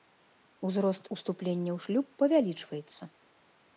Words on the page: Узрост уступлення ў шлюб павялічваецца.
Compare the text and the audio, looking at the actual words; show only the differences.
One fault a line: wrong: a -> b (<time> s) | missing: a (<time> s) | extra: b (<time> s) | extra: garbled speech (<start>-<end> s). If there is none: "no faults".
no faults